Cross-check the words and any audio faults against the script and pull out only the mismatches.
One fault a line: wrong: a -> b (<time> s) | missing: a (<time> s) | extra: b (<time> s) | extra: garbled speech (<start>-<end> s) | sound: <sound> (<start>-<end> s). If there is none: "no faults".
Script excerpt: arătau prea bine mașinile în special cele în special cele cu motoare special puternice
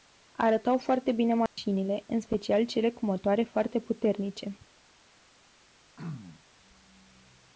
wrong: prea -> foarte (0.8 s)
sound: dropout (1.5-1.6 s)
missing: în special cele (2.9 s)
wrong: special -> foarte (3.4 s)
sound: throat clearing (6.0-6.4 s)